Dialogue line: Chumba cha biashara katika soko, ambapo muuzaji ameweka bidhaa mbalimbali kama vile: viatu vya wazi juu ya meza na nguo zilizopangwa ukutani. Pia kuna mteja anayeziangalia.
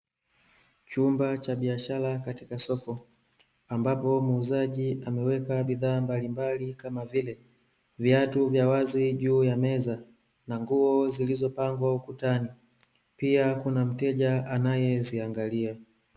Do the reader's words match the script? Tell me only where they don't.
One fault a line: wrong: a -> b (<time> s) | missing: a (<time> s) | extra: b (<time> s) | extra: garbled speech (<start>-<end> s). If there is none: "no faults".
no faults